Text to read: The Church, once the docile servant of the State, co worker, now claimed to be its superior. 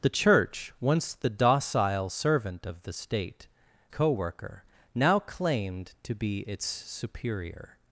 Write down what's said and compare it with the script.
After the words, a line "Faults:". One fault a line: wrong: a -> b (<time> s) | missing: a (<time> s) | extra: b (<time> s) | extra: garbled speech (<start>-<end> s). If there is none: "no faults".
The Church, once the docile servant of the State, co worker, now claimed to be its superior.
Faults:
no faults